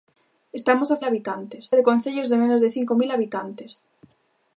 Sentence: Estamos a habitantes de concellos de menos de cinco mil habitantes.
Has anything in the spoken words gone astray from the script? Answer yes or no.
no